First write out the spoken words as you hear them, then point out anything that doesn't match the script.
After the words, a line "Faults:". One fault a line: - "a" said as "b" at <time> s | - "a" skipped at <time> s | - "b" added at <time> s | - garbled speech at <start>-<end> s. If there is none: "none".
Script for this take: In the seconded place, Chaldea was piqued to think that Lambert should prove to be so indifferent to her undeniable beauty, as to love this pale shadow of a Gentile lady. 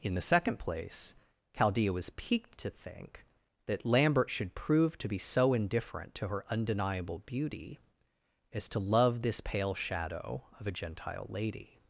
In the second place, Chaldea was piqued to think that Lambert should prove to be so indifferent to her undeniable beauty, as to love this pale shadow of a Gentile lady.
Faults:
- "seconded" said as "second" at 0.2 s